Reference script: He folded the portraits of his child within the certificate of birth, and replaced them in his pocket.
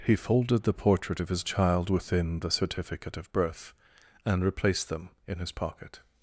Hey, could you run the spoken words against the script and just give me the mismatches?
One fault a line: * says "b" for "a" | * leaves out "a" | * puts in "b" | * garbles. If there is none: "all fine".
* says "portrait" for "portraits"